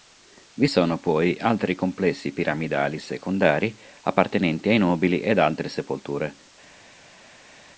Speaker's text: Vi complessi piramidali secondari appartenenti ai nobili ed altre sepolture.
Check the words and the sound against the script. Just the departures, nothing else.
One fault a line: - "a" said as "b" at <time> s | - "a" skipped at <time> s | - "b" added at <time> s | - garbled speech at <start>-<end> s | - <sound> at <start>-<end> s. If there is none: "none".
- "sono poi altri" added at 0.6 s